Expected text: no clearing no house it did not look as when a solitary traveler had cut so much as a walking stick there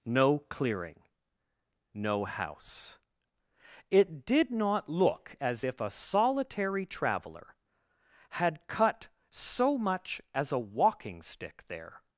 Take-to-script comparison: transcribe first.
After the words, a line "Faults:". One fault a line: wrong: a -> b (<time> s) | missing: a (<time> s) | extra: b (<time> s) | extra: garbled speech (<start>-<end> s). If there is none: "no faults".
no clearing no house it did not look as if a solitary traveler had cut so much as a walking stick there
Faults:
wrong: when -> if (5.6 s)